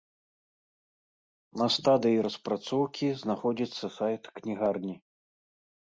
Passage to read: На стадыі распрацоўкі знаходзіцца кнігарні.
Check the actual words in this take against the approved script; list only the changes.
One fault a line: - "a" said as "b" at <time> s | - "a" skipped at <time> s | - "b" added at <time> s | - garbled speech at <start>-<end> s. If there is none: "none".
- "сайт" added at 4.0 s